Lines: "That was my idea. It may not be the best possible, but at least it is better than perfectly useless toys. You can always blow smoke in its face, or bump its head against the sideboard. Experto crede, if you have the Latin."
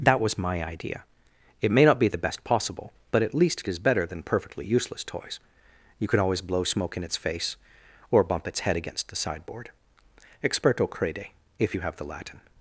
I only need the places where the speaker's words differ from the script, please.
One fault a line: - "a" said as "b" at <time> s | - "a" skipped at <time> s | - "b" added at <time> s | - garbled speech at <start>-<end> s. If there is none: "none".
none